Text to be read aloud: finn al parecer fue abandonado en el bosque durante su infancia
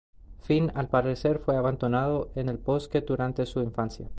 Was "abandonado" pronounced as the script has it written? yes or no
yes